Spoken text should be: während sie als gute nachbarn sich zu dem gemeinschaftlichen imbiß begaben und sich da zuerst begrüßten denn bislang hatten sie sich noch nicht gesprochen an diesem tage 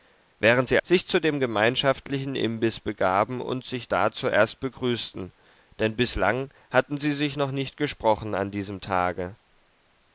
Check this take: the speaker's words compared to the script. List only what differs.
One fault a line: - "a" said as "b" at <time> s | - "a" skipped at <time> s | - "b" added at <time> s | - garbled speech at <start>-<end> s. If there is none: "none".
- "als gute nachbarn" skipped at 0.8 s